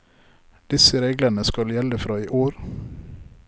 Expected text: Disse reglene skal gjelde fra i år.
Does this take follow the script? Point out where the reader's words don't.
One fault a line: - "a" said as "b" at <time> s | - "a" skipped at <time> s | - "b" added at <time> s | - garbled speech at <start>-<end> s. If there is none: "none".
none